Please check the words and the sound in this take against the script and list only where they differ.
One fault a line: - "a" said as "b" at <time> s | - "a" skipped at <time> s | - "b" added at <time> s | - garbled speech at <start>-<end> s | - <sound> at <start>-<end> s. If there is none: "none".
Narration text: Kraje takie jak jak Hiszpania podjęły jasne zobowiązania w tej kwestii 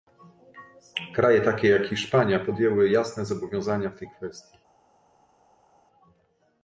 - "jak" skipped at 1.9 s